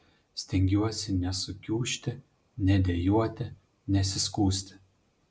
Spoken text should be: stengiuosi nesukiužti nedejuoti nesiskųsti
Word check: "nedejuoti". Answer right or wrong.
right